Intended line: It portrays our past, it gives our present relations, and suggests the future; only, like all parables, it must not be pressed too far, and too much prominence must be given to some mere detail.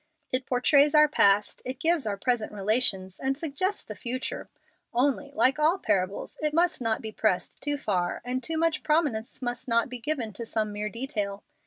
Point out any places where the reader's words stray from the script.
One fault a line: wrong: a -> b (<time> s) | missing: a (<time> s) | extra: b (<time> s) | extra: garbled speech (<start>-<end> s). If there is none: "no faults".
extra: not (9.7 s)